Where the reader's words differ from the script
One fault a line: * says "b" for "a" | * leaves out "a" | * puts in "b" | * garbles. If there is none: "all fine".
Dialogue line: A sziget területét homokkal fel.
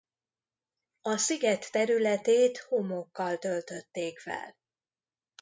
* puts in "töltötték"